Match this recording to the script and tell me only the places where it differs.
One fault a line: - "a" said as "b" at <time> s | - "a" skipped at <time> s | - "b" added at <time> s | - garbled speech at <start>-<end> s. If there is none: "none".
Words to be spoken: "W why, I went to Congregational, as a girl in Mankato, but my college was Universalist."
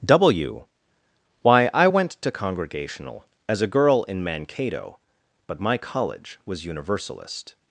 none